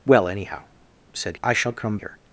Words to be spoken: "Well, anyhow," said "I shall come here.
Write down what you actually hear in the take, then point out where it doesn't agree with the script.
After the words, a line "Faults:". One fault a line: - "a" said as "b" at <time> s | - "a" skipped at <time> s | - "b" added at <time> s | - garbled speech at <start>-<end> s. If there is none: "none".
"Well, anyhow," said "I shall come here.
Faults:
none